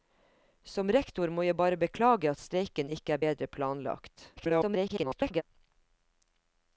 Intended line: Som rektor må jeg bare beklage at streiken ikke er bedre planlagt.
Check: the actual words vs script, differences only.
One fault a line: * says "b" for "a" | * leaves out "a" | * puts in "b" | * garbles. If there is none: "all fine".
* garbles